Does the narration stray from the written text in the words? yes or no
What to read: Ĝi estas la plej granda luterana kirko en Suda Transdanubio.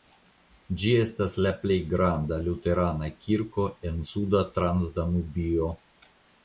no